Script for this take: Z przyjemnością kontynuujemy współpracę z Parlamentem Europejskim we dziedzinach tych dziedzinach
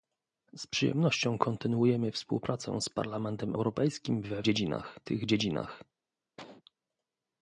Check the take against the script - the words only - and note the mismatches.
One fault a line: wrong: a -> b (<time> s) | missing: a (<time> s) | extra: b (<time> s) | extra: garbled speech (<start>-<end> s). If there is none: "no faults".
no faults